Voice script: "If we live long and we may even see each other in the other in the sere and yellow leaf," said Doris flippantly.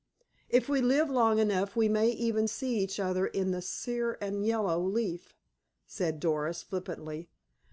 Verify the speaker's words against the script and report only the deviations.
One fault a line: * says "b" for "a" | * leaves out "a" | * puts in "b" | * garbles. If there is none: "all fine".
* says "enough" for "and"
* leaves out "other in the"